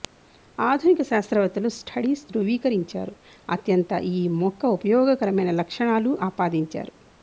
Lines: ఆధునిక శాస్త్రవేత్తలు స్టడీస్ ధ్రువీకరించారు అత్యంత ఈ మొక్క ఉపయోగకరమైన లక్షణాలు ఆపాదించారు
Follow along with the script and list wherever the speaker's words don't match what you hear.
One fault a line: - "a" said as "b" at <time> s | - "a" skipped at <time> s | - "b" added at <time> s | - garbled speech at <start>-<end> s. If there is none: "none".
none